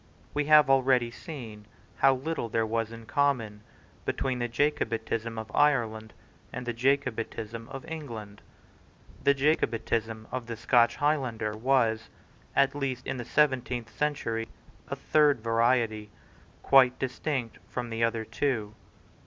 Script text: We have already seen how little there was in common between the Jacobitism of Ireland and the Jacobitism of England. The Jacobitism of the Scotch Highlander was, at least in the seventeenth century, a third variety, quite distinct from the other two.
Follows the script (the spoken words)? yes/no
yes